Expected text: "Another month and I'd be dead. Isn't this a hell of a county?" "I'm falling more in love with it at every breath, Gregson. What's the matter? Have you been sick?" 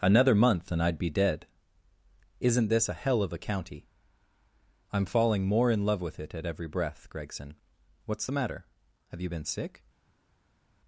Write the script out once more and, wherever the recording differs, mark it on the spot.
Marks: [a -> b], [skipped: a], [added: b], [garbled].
"Another month and I'd be dead. Isn't this a hell of a county?" "I'm falling more in love with it at every breath, Gregson. What's the matter? Have you been sick?"